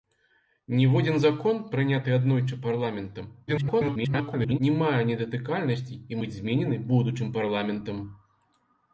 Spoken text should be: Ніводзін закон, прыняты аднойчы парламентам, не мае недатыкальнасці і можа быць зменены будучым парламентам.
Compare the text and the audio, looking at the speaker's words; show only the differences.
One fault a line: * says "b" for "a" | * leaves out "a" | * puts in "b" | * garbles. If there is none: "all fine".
* garbles
* leaves out "можа"